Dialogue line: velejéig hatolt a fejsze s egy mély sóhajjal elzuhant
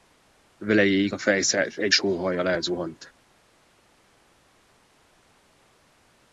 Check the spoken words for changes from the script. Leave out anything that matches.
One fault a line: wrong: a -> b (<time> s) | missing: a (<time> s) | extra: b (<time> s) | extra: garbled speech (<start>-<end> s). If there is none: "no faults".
missing: hatolt (1.1 s)
missing: mély (1.9 s)